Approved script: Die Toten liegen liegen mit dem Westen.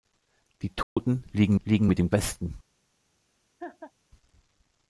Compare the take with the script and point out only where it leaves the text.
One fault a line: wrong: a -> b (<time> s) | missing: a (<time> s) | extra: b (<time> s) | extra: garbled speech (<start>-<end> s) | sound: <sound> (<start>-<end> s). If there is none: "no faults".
sound: dropout (0.8-1.0 s)
sound: laugh (3.6-3.9 s)